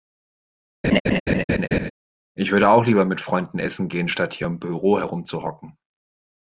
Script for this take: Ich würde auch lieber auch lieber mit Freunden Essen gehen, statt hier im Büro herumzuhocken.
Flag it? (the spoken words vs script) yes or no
yes